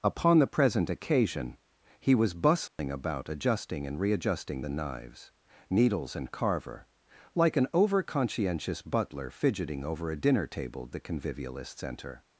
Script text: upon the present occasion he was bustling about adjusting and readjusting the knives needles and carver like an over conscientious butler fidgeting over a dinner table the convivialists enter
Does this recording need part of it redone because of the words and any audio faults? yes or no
yes